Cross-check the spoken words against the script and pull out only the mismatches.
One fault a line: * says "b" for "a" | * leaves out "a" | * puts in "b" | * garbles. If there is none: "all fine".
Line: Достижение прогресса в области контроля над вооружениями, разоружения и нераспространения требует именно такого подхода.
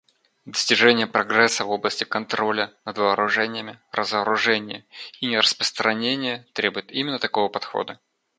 all fine